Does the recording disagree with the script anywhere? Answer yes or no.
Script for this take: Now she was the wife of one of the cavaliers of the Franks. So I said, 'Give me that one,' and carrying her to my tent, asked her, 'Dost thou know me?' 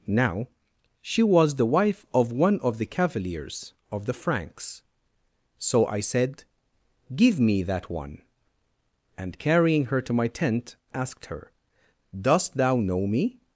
no